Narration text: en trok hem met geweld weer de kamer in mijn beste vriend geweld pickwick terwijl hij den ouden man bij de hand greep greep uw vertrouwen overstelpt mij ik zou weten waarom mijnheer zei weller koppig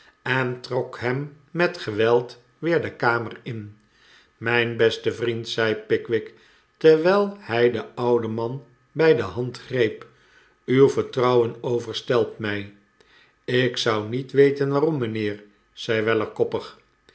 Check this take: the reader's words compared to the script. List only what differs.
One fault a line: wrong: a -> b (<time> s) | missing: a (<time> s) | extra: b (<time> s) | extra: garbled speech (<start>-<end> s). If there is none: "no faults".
wrong: geweld -> zei (5.5 s)
missing: greep (10.1 s)
extra: niet (14.1 s)